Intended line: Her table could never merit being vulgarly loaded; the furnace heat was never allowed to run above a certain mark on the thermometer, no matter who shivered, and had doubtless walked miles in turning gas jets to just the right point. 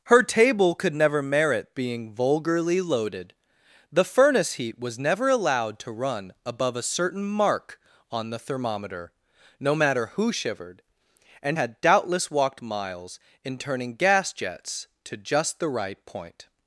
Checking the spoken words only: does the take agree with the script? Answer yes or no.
yes